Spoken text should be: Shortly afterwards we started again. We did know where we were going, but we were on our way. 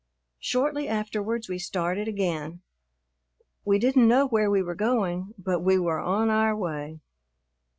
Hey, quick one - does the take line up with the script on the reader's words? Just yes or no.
no